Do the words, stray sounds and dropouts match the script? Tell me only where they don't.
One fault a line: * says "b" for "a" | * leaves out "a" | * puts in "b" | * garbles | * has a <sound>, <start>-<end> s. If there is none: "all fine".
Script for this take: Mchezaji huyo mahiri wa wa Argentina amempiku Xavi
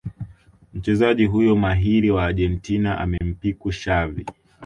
* leaves out "wa"
* has a dropout, 3.2-3.2 s